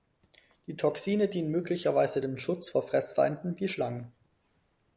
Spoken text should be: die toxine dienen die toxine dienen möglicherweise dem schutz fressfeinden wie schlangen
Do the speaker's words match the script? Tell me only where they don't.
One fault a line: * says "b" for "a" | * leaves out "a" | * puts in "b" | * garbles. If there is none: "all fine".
* leaves out "die toxine dienen"
* puts in "vor"